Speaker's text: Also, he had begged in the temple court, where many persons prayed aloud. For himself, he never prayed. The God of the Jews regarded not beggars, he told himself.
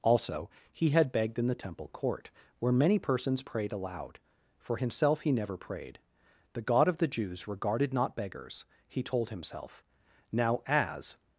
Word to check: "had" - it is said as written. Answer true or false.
true